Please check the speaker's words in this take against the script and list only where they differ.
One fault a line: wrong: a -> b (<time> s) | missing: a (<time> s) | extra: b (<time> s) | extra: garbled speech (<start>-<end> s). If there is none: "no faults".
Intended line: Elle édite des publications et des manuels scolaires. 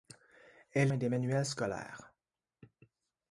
missing: édite des publications (0.9 s)